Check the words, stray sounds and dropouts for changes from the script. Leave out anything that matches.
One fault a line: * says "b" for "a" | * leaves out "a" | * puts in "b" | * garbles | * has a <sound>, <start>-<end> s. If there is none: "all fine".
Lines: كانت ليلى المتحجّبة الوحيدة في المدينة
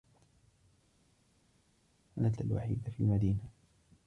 * leaves out "ليلى المتحجّبة"